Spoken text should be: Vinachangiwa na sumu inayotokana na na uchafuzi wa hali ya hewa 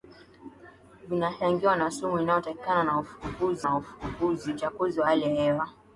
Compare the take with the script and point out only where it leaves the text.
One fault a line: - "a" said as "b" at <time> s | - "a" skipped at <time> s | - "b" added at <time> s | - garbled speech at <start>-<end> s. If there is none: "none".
none